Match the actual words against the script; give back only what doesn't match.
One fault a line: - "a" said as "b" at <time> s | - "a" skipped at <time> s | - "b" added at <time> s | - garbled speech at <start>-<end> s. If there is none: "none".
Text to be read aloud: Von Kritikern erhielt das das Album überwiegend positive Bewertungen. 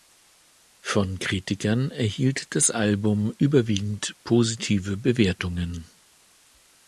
- "das" skipped at 2.7 s